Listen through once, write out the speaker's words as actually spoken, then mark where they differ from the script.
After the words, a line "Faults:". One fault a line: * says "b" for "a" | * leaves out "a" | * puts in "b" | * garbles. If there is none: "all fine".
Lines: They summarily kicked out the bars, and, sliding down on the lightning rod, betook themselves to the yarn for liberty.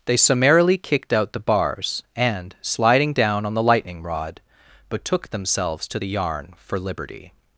They summarily kicked out the bars, and, sliding down on the lightning rod, betook themselves to the yarn for liberty.
Faults:
all fine